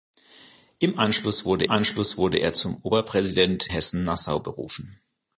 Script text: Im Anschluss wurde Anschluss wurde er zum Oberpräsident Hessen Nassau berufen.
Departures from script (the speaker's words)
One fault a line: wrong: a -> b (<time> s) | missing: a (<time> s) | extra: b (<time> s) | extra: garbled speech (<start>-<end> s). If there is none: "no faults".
no faults